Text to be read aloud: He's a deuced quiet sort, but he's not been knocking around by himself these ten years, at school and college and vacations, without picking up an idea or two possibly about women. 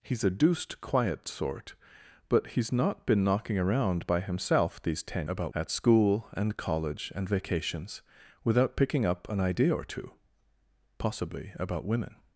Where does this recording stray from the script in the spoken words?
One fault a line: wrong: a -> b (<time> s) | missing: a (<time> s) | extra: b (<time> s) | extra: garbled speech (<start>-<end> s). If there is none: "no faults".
wrong: years -> about (5.2 s)